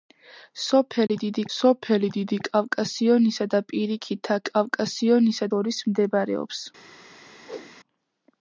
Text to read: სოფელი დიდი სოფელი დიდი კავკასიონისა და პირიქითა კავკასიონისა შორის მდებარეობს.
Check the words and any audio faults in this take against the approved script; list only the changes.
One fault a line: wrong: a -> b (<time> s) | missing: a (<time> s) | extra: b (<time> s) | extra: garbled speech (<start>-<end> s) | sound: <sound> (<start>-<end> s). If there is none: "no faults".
sound: dropout (1.1-1.1 s)
sound: whoosh (7.4-7.8 s)